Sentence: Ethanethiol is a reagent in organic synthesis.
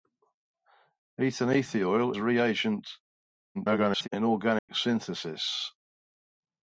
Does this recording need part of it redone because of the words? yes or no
yes